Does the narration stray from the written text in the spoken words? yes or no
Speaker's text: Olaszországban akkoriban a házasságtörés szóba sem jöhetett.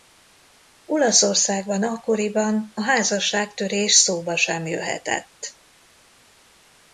no